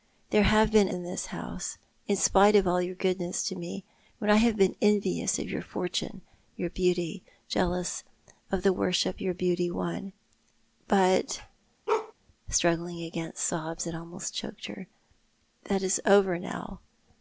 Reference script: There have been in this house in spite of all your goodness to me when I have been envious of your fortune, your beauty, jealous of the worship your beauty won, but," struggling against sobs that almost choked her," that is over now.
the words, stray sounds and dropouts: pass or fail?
fail